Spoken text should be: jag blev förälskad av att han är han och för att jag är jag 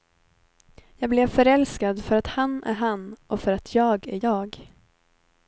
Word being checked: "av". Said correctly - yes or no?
no